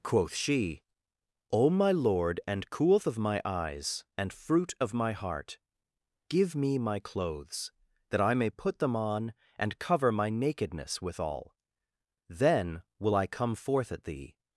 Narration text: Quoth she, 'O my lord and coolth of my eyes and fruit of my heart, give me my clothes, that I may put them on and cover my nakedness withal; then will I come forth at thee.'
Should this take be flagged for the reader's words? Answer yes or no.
no